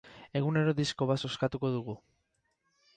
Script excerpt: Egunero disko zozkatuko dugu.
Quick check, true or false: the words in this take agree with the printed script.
false